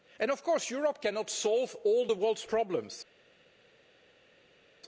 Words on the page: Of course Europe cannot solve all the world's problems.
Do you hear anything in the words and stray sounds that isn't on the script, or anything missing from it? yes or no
no